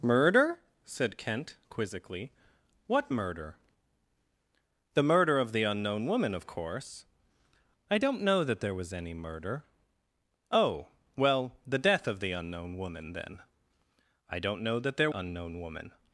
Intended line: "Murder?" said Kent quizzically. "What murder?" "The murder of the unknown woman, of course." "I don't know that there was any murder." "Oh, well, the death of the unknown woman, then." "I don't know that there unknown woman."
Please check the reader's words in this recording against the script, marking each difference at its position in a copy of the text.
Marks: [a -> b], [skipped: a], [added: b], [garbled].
"Murder?" said Kent quizzically. "What murder?" "The murder of the unknown woman, of course." "I don't know that there was any murder." "Oh, well, the death of the unknown woman, then." "I don't know that there unknown woman."